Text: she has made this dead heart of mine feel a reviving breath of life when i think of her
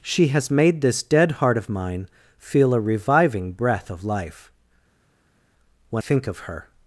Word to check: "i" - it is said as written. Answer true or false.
false